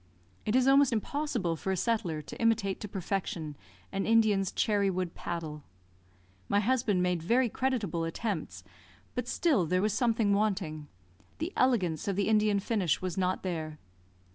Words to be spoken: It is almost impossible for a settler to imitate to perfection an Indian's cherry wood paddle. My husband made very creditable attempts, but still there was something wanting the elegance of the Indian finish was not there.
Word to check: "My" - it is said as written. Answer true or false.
true